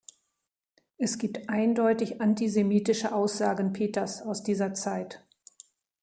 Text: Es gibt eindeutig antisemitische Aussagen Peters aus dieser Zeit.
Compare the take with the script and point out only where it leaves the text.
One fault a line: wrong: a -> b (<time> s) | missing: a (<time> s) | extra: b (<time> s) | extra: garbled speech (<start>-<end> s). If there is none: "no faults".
no faults